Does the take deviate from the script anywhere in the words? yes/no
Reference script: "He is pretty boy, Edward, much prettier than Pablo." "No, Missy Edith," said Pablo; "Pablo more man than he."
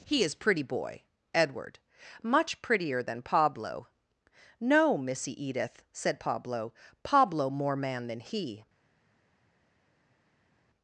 no